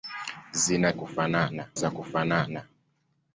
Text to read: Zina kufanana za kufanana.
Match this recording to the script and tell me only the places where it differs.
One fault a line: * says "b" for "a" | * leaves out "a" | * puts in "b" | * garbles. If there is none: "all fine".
all fine